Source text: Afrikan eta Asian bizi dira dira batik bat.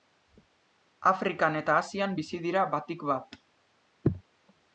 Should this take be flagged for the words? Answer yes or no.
yes